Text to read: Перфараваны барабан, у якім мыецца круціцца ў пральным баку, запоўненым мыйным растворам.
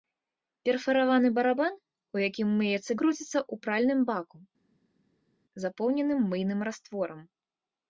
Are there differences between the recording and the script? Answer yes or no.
no